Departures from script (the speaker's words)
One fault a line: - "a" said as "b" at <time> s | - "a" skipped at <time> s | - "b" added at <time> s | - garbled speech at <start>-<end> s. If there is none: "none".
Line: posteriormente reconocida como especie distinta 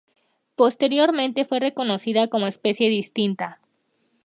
- "fue" added at 1.4 s